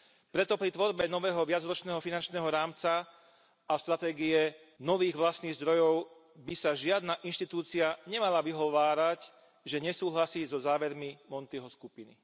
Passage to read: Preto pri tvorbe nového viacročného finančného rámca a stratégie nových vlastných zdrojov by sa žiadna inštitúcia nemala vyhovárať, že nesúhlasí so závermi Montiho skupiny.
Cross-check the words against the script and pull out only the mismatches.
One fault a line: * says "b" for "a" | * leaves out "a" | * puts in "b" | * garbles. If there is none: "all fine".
all fine